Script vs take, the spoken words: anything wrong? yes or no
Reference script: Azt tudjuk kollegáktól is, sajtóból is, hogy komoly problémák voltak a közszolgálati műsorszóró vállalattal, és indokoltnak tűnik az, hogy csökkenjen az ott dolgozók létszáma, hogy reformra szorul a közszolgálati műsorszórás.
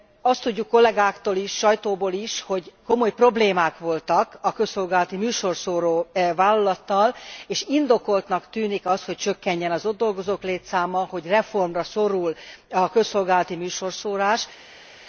no